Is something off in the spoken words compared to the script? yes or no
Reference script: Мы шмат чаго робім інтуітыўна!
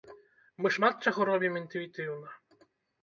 no